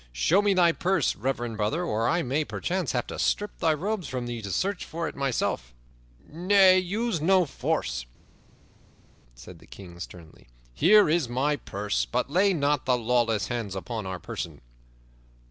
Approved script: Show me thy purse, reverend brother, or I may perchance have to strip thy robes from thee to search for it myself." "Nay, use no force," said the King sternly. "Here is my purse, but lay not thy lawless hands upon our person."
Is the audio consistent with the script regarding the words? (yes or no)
yes